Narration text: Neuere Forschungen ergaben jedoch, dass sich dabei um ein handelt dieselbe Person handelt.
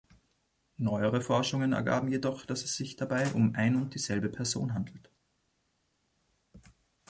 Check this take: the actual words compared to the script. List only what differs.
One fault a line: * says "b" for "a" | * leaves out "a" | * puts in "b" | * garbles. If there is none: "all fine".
* puts in "es"
* says "und" for "handelt"